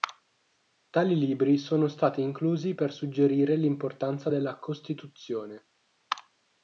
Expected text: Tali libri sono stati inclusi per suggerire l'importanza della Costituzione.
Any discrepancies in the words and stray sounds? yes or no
no